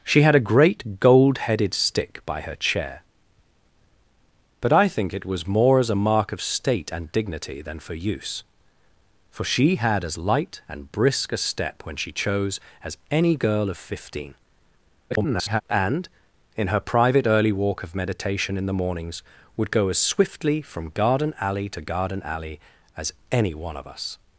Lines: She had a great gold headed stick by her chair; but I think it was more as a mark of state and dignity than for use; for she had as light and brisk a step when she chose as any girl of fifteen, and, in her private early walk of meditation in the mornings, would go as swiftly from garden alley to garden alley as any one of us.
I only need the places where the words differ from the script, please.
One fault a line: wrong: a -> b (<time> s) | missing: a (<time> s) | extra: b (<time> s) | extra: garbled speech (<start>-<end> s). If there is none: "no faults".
extra: garbled speech (15.1-15.6 s)